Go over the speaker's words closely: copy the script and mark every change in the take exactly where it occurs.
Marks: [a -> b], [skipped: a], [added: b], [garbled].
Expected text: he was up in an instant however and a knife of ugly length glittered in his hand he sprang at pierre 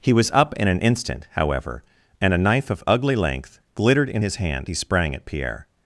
he was up in an instant however and a knife of ugly length glittered in his hand he sprang at pierre